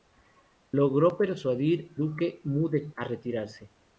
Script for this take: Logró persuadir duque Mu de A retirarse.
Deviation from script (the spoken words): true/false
false